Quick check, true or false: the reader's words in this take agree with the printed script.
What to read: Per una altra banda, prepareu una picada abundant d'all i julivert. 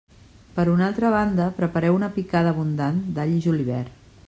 true